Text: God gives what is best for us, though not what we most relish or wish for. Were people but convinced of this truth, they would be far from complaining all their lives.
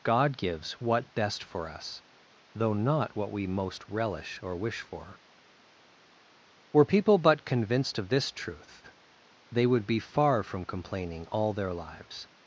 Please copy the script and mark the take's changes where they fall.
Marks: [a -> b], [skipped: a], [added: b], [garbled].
God gives what [skipped: is] best for us, though not what we most relish or wish for. Were people but convinced of this truth, they would be far from complaining all their lives.